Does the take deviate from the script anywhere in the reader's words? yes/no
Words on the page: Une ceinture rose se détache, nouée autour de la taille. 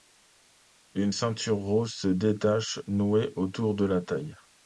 no